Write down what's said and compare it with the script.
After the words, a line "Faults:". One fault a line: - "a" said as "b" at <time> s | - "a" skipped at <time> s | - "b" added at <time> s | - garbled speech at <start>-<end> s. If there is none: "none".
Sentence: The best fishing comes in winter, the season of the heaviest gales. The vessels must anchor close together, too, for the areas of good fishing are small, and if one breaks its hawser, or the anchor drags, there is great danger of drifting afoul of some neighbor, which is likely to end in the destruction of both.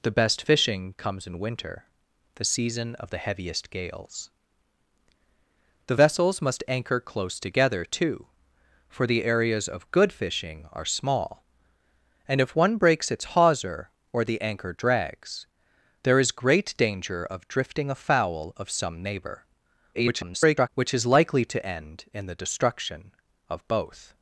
The best fishing comes in winter, the season of the heaviest gales. The vessels must anchor close together, too, for the areas of good fishing are small, and if one breaks its hawser, or the anchor drags, there is great danger of drifting afoul of some neighbor, [garbled] which is likely to end in the destruction of both.
Faults:
- garbled speech at 19.9-20.7 s